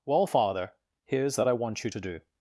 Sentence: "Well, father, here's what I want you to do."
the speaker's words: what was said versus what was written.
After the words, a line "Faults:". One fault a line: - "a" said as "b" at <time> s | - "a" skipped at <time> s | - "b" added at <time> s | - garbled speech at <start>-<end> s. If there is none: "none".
"Well, father, here's that I want you to do."
Faults:
- "what" said as "that" at 1.4 s